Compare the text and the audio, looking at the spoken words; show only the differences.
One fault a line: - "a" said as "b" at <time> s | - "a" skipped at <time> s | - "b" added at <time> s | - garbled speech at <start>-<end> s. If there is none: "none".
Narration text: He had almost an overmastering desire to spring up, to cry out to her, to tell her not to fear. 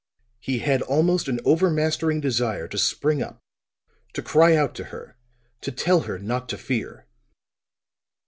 none